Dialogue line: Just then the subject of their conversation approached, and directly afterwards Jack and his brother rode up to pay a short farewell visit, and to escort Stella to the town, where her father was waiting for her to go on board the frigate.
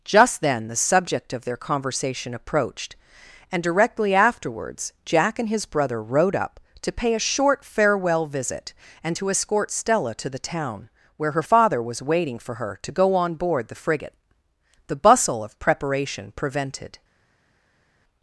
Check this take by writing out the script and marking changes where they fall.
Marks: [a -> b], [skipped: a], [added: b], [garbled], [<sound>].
Just then the subject of their conversation approached, and directly afterwards Jack and his brother rode up to pay a short farewell visit, and to escort Stella to the town, where her father was waiting for her to go on board the frigate. [added: The bustle of preparation prevented]